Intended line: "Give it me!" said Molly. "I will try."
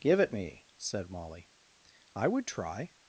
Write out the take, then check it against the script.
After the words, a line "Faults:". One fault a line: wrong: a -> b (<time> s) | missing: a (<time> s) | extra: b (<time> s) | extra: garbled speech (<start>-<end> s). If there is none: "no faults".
"Give it me!" said Molly. "I would try."
Faults:
wrong: will -> would (2.3 s)